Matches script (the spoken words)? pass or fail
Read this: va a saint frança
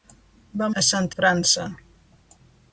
pass